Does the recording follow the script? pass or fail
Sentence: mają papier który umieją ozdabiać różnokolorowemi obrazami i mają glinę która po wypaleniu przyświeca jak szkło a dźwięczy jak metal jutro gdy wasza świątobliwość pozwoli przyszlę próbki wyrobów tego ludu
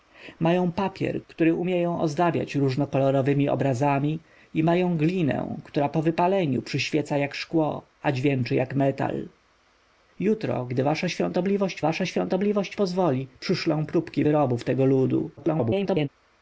fail